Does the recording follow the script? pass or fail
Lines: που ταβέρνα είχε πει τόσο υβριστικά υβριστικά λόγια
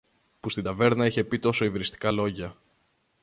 fail